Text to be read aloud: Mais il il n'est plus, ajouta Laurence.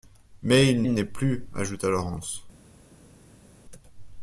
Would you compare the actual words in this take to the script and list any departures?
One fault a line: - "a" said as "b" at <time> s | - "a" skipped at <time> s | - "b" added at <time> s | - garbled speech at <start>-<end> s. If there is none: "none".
none